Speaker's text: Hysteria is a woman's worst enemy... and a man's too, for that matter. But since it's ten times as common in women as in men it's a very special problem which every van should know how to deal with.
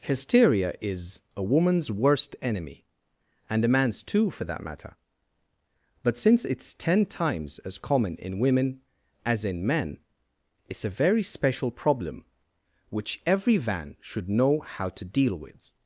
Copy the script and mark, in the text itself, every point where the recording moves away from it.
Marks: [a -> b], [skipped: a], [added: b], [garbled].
Hysteria is a woman's worst enemy... and a man's too, for that matter. But since it's ten times as common in women as in men it's a very special problem which every van should know how to deal with.